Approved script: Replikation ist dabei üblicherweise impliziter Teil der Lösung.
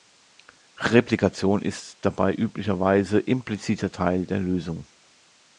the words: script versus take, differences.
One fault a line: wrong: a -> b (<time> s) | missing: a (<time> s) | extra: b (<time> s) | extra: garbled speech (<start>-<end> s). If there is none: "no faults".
no faults